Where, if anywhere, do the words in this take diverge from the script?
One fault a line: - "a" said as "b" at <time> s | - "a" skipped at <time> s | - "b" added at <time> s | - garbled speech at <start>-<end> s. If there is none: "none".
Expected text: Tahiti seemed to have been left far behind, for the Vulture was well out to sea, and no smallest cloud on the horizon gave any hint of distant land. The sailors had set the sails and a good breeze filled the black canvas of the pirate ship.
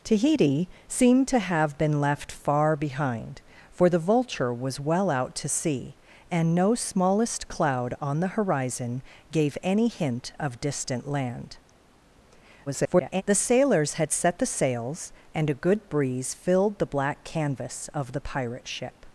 - garbled speech at 12.7-13.2 s